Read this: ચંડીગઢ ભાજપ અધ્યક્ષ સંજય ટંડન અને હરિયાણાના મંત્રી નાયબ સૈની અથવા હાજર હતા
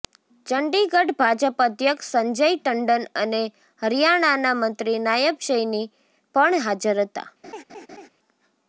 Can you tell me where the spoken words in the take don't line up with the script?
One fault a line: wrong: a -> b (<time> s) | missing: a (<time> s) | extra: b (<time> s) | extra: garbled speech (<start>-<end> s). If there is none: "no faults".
wrong: અથવા -> પણ (6.3 s)